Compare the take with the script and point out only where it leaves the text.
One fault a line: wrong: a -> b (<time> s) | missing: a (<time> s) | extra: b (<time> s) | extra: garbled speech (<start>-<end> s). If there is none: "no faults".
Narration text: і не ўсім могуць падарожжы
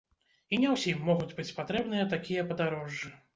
extra: быць патрэбныя такія (1.4 s)